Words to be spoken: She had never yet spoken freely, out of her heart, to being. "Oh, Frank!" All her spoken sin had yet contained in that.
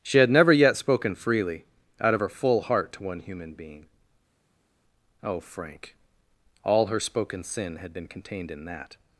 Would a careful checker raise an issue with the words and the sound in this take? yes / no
yes